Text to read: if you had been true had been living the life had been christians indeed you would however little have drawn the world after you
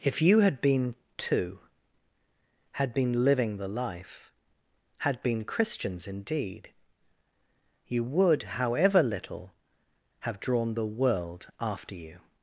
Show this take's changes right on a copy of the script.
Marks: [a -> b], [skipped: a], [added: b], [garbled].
if you had been [true -> two] had been living the life had been christians indeed you would however little have drawn the world after you